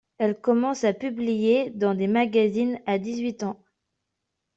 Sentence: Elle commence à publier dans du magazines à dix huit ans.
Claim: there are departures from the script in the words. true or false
true